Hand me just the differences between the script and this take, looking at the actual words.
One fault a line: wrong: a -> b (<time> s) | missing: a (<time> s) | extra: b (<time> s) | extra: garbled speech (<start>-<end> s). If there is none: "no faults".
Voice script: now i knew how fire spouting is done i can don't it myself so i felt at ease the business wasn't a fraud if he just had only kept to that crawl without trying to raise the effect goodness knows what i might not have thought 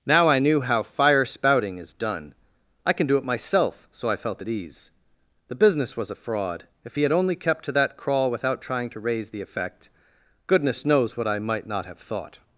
wrong: don't -> do (3.1 s)
wrong: wasn't -> was (6.0 s)
missing: just (7.0 s)